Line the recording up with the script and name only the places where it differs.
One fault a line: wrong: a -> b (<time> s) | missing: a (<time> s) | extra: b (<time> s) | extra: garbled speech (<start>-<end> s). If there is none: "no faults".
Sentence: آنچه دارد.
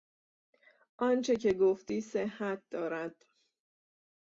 extra: که گفتی صحت (1.4 s)